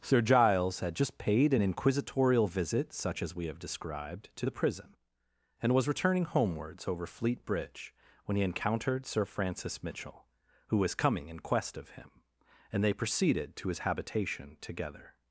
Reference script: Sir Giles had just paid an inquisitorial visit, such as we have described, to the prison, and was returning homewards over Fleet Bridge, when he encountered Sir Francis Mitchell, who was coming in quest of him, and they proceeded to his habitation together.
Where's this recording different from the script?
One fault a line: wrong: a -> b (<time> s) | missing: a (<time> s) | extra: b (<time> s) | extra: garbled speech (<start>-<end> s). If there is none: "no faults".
no faults